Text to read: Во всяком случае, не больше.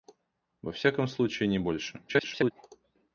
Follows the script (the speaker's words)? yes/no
no